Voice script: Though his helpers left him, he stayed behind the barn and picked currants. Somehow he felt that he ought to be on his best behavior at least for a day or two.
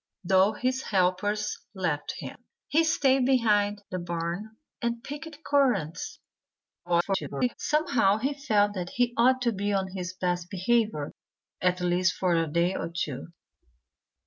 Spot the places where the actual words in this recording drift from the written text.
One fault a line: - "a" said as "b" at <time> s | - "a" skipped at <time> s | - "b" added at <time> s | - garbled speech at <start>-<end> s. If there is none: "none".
- garbled speech at 6.8-7.5 s